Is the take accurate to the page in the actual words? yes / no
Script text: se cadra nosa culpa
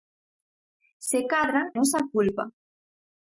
yes